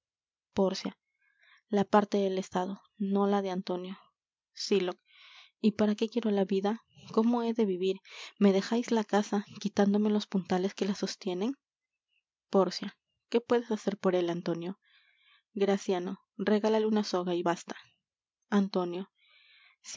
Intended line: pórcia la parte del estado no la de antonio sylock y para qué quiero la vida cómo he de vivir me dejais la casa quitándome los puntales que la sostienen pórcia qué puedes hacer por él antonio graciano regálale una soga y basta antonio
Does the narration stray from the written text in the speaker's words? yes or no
no